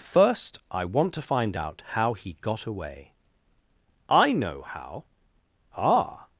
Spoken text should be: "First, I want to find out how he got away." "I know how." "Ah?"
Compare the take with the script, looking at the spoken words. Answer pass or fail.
pass